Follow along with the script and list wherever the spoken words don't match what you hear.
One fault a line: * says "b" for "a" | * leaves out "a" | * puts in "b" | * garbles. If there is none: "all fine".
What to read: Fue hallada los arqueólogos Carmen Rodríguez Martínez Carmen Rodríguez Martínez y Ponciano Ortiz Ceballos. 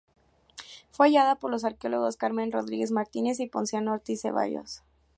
* puts in "por"
* leaves out "Carmen Rodríguez Martínez"